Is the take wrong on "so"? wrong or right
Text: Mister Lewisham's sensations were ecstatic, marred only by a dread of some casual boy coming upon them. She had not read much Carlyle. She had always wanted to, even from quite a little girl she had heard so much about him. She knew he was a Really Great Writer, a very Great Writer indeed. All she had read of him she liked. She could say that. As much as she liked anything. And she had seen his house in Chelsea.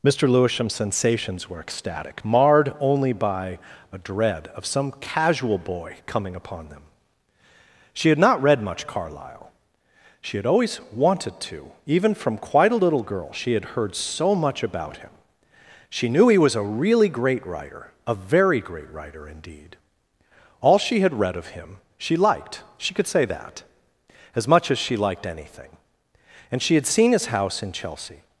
right